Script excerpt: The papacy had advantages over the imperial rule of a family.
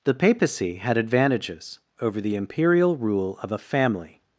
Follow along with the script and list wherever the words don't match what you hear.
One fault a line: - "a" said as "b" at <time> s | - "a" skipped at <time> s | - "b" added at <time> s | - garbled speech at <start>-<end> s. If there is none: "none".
none